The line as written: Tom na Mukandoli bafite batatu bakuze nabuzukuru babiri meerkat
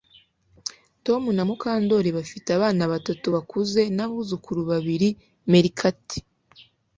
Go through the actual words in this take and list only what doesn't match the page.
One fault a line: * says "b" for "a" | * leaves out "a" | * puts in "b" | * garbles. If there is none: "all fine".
* puts in "abana"